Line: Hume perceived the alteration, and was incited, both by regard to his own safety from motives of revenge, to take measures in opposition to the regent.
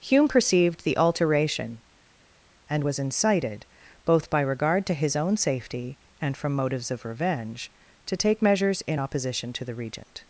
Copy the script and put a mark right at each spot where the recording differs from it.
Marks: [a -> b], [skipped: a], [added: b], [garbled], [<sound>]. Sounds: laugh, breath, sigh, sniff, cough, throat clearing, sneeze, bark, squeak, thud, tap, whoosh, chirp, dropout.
Hume perceived the alteration, and was incited, both by regard to his own safety [added: and] from motives of revenge, to take measures in opposition to the regent.